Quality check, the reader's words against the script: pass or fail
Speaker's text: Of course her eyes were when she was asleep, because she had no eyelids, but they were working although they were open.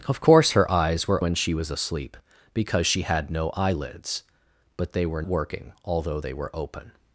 pass